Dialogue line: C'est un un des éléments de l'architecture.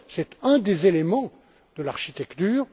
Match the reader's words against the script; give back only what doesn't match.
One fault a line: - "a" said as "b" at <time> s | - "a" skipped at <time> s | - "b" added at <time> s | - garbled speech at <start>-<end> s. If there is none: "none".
- "un" skipped at 0.6 s